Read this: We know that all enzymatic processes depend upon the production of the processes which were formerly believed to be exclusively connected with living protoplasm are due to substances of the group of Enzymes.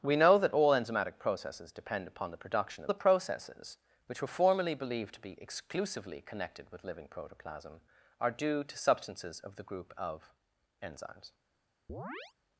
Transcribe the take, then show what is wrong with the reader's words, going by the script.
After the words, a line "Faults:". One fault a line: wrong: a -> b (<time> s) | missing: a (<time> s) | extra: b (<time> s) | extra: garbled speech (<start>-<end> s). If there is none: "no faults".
We know that all enzymatic processes depend upon the production of the processes which were formerly believed to be exclusively connected with living protoplasm are due to substances of the group of Enzymes.
Faults:
no faults